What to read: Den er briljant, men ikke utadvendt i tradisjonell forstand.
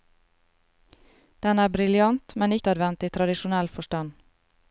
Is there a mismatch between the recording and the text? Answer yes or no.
yes